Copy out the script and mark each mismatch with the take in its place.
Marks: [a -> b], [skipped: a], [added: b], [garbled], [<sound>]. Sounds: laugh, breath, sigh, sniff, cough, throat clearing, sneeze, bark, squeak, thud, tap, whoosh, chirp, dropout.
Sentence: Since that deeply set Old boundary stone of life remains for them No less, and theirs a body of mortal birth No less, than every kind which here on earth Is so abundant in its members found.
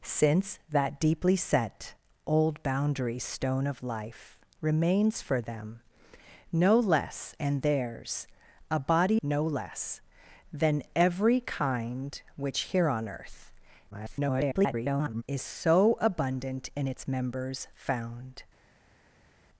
Since that deeply set Old boundary stone of life remains for them No less, and theirs a body [skipped: of mortal birth] No less, than every kind which here on earth [garbled] Is so abundant in its members found.